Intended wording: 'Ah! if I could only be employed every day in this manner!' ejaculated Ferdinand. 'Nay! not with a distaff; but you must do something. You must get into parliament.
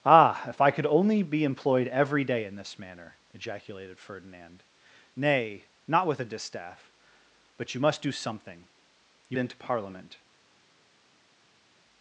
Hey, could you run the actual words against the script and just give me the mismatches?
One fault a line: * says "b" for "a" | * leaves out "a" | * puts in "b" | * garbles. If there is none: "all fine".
* leaves out "must get"